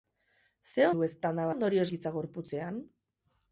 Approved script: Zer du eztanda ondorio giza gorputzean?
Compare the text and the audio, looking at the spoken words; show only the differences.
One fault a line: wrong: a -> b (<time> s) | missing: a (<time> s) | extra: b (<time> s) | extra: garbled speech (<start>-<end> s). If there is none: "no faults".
no faults